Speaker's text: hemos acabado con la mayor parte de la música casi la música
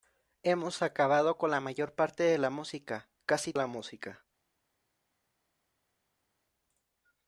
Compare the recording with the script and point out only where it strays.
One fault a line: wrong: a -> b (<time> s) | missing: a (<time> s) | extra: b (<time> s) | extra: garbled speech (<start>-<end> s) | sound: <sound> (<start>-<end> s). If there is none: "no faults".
no faults